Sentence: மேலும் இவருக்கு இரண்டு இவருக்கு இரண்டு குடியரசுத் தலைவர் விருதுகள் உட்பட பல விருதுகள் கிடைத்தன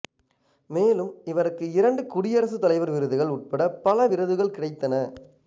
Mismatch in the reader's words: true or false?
true